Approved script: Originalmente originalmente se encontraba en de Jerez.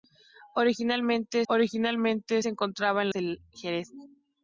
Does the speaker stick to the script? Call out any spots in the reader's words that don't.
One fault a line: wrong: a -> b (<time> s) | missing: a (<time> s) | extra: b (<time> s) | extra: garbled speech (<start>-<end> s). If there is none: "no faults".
no faults